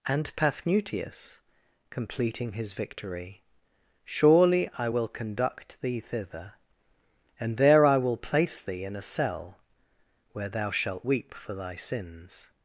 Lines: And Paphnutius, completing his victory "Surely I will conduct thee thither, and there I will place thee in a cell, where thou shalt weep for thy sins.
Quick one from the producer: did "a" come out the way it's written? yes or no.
yes